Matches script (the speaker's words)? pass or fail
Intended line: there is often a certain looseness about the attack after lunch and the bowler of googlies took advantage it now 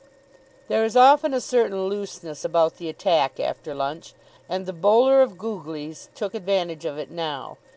fail